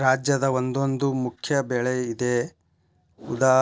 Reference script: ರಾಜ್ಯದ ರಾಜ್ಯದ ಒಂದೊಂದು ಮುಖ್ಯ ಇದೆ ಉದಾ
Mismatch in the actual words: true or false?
true